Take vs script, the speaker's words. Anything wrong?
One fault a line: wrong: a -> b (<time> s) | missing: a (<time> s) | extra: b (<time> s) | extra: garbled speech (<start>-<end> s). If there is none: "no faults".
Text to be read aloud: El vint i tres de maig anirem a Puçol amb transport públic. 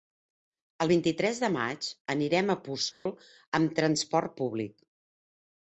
no faults